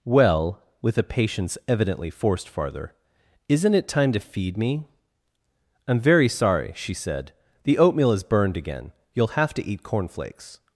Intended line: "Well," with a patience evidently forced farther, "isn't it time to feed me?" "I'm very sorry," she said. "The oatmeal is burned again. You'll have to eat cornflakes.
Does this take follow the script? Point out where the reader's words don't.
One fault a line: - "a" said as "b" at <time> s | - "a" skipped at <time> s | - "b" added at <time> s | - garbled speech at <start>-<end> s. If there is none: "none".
none